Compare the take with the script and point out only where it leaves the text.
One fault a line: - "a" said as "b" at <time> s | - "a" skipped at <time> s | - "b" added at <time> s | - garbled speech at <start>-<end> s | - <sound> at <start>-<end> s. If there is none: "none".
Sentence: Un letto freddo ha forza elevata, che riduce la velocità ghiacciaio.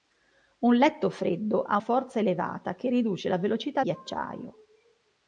none